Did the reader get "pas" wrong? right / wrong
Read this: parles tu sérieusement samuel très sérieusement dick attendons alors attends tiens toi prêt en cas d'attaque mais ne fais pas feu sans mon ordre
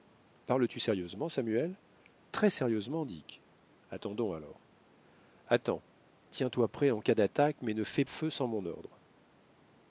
wrong